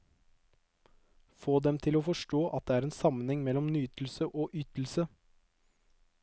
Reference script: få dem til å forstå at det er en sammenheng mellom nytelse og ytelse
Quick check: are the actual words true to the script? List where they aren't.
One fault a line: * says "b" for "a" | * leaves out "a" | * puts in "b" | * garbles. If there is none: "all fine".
all fine